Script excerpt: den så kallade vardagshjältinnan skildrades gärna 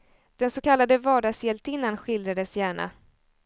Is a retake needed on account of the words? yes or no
no